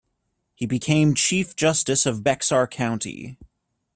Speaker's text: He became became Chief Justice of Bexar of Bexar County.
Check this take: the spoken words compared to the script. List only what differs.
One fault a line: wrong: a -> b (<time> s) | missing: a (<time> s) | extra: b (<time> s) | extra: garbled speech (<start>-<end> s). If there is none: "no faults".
missing: became (1.1 s)
missing: of Bexar (2.7 s)